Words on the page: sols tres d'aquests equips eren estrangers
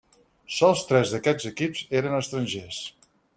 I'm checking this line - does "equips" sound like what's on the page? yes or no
yes